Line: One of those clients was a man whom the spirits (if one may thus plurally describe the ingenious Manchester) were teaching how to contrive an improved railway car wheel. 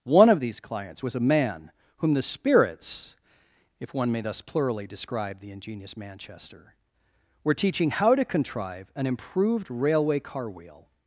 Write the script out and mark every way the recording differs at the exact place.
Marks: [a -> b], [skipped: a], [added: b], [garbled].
One of [those -> these] clients was a man whom the spirits (if one may thus plurally describe the ingenious Manchester) were teaching how to contrive an improved railway car wheel.